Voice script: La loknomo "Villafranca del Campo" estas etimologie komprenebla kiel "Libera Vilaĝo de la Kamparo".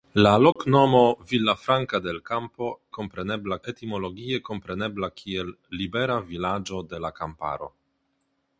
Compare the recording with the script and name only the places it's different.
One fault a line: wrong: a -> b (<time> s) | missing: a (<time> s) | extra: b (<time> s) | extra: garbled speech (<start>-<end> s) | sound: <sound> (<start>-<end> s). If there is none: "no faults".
sound: dropout (0.5-0.6 s)
wrong: estas -> komprenebla (3.0 s)